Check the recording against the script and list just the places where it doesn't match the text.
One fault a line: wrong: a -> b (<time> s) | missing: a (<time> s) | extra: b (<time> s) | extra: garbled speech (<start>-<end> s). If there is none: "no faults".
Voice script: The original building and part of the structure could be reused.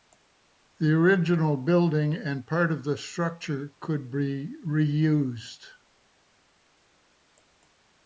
no faults